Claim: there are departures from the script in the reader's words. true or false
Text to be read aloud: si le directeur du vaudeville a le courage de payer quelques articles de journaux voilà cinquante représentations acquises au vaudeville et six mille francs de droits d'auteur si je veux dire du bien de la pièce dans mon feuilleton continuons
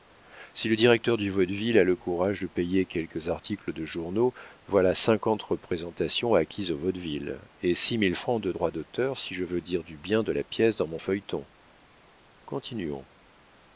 false